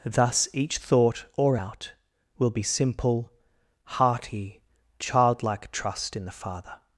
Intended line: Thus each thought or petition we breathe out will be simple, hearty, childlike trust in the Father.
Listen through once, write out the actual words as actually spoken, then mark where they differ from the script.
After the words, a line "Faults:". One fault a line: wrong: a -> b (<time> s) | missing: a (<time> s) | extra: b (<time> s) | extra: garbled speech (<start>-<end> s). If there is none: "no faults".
Thus each thought or out will be simple, hearty, childlike trust in the Father.
Faults:
missing: petition we breathe (1.6 s)